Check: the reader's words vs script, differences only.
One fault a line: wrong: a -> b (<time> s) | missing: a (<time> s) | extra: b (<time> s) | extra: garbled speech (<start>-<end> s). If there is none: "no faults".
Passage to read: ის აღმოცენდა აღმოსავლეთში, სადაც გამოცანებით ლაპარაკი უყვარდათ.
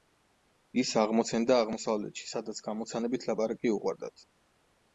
no faults